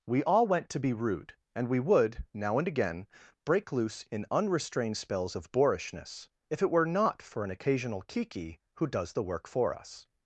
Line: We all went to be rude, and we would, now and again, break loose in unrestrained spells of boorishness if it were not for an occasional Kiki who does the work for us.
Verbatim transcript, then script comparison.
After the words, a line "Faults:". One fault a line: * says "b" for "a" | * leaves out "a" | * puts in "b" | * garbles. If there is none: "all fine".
We all went to be rude, and we would, now and again, break loose in unrestrained spells of boorishness if it were not for an occasional Kiki who does the work for us.
Faults:
all fine